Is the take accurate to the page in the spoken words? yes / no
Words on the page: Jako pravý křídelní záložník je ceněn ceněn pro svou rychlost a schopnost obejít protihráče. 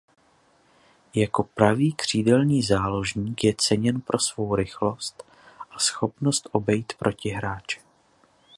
no